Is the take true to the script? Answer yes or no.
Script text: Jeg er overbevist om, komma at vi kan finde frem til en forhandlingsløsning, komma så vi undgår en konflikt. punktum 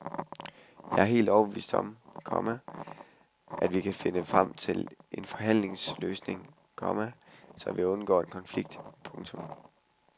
no